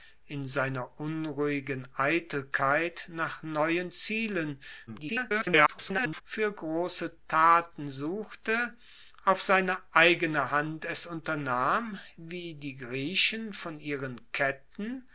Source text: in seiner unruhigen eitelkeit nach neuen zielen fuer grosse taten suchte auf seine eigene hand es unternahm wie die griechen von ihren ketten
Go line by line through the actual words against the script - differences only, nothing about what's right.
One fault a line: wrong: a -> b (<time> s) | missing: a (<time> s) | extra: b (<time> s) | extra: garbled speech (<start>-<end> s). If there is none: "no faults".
extra: garbled speech (4.9-6.2 s)